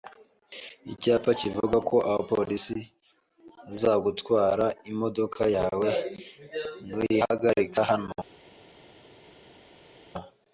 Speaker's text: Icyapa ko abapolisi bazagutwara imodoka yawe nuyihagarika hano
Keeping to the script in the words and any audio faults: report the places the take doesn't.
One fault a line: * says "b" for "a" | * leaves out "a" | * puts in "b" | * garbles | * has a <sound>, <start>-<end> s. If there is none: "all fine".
* puts in "kivuga"